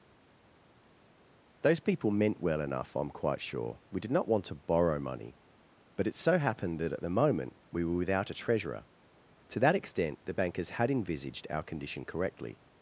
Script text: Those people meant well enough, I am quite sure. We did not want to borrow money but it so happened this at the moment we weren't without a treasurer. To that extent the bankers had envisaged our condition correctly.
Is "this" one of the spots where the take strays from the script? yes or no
yes